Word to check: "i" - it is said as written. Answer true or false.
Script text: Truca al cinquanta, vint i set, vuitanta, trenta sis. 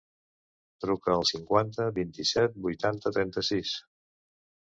true